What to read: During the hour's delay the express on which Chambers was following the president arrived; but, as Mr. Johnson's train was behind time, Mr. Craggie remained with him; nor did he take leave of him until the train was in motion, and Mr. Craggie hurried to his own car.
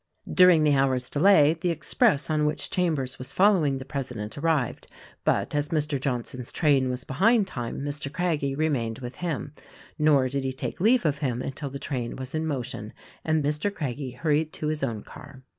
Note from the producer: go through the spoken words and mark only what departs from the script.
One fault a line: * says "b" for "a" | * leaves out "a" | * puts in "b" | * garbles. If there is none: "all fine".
all fine